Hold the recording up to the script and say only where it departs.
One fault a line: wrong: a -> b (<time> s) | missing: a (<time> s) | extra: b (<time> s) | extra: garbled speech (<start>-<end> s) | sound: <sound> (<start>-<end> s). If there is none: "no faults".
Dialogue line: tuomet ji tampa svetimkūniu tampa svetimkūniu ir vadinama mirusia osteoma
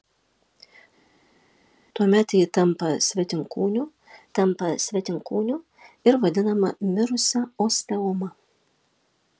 no faults